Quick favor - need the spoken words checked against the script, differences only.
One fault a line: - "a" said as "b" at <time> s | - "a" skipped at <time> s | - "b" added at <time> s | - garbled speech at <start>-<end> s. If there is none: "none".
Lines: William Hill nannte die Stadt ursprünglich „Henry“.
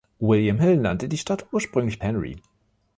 none